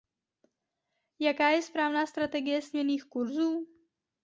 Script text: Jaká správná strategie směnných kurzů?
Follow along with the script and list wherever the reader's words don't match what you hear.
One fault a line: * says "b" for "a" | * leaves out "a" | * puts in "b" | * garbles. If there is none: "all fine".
* puts in "je"